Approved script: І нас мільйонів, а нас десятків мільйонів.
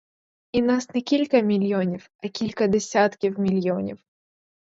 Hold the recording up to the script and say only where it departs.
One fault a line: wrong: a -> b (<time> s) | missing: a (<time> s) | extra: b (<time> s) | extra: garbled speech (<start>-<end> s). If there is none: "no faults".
extra: не кілька (0.9 s)
wrong: нас -> кілька (2.3 s)